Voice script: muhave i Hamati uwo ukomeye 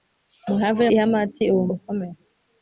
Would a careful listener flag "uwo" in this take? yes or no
no